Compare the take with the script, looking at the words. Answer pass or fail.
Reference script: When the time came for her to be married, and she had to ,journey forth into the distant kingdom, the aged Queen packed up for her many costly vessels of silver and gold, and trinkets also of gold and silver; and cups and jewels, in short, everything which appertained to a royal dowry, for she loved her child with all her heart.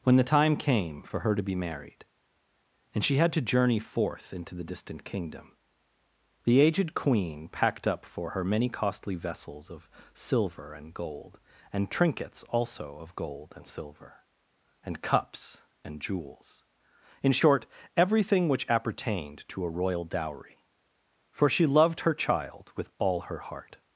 pass